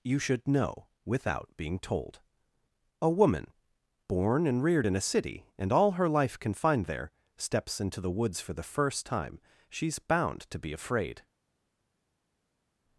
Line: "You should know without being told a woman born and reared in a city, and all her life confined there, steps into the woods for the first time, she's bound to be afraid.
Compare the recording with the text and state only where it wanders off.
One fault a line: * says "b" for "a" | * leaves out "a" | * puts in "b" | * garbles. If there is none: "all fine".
all fine